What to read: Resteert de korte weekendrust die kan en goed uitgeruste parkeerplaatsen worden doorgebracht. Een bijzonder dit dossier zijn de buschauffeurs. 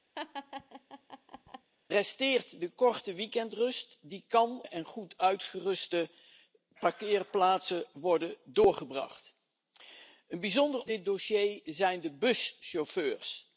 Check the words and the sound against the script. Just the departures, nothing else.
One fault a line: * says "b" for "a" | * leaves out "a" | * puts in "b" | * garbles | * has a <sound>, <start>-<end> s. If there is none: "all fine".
* has a laugh, 0.1-1.7 s